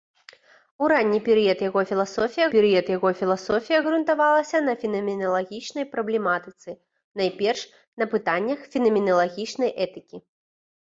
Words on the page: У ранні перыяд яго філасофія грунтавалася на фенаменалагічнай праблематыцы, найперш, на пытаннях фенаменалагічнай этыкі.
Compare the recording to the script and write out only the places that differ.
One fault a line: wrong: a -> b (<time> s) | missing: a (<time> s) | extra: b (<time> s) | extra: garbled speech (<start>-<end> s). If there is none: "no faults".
extra: перыяд яго філасофія (2.5 s)